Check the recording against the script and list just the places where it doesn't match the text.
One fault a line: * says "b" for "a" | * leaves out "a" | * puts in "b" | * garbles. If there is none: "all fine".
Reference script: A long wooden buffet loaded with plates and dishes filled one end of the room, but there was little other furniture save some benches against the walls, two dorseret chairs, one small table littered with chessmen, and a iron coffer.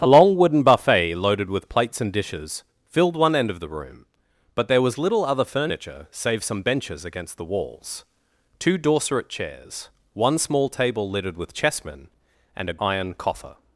all fine